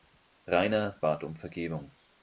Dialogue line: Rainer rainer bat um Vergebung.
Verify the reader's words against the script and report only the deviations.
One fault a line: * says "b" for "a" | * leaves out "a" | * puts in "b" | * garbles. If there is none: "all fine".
* leaves out "rainer"